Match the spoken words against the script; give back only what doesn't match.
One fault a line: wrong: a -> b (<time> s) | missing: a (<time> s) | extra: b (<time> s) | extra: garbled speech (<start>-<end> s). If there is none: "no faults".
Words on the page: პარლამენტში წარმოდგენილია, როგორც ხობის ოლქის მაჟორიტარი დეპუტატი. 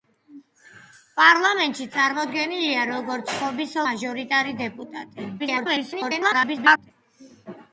missing: ოლქის (3.8 s)
extra: garbled speech (5.4-6.9 s)